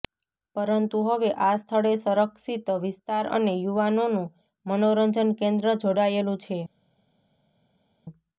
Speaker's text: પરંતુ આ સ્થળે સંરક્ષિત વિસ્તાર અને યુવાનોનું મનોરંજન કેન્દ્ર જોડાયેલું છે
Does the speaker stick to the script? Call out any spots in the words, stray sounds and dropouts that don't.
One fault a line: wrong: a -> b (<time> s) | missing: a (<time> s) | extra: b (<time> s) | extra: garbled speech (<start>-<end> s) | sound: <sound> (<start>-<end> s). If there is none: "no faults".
extra: હવે (1.1 s)